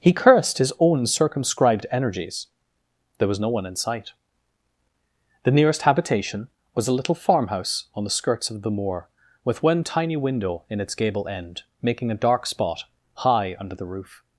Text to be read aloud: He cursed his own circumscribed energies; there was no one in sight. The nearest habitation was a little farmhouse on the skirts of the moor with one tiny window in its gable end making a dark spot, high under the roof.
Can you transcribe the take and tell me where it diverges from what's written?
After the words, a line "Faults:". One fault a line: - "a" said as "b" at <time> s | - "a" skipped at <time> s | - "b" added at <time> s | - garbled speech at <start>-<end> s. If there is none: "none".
He cursed his own circumscribed energies; there was no one in sight. The nearest habitation was a little farmhouse on the skirts of the moor with one tiny window in its gable end making a dark spot, high under the roof.
Faults:
none